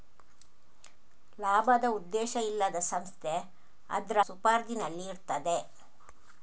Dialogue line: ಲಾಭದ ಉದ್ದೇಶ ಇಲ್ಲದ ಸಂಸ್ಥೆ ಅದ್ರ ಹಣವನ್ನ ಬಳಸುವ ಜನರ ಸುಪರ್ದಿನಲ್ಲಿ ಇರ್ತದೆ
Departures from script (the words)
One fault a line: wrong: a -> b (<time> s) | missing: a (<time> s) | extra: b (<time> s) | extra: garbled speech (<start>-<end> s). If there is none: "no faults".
missing: ಹಣವನ್ನ ಬಳಸುವ ಜನರ (4.2 s)